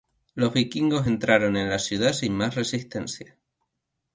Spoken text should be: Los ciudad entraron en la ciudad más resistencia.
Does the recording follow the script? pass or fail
fail